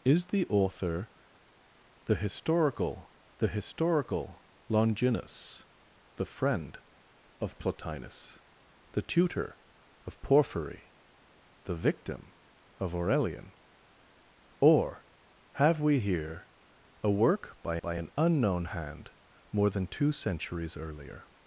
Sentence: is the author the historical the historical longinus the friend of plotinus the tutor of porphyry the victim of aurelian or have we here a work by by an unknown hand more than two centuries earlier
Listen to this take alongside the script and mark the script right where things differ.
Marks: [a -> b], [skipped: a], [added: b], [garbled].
is the author the historical the historical longinus the friend of plotinus the tutor of porphyry the victim of aurelian or have we here a work by by an unknown hand more than two centuries earlier